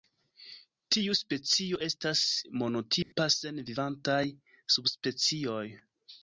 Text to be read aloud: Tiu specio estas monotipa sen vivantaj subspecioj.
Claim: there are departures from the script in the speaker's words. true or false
false